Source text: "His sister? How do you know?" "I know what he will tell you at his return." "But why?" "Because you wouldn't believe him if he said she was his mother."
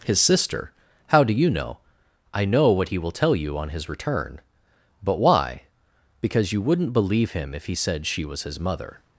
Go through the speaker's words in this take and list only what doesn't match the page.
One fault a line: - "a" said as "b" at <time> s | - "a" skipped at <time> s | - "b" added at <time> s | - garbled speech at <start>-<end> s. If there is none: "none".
- "at" said as "on" at 3.6 s